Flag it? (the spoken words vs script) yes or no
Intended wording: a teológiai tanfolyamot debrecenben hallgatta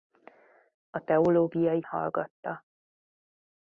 yes